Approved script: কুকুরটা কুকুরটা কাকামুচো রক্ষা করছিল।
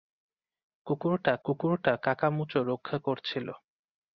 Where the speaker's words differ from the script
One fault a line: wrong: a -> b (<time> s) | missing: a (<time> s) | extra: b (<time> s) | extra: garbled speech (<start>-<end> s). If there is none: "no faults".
no faults